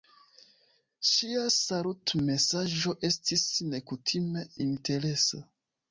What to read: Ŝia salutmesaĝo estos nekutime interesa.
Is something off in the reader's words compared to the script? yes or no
yes